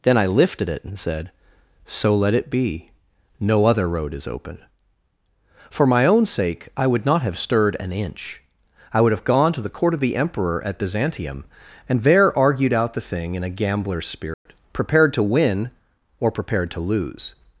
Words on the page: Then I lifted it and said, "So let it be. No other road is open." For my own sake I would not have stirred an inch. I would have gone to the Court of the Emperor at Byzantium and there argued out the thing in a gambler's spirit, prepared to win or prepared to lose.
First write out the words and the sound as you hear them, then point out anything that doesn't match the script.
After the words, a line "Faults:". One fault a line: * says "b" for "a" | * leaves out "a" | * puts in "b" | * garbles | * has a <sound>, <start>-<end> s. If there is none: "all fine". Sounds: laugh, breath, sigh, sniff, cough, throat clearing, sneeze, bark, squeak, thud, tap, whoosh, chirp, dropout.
Then I lifted it and said, "So let it be. No other road is open." For my own sake I would not have stirred an inch. I would have gone to the Court of the Emperor at Byzantium and there argued out the thing in a gambler's spirit, prepared to win or prepared to lose.
Faults:
* has a dropout, 14.3-14.5 s